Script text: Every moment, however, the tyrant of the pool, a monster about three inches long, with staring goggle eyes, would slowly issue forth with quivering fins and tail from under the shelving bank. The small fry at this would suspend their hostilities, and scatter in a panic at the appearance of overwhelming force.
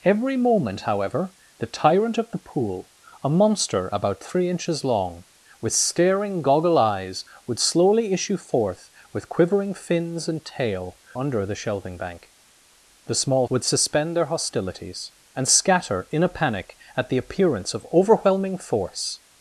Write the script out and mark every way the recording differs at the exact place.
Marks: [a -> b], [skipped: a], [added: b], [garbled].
Every moment, however, the tyrant of the pool, a monster about three inches long, with staring goggle eyes, would slowly issue forth with quivering fins and tail [skipped: from] under the shelving bank. The small [skipped: fry at this] would suspend their hostilities, and scatter in a panic at the appearance of overwhelming force.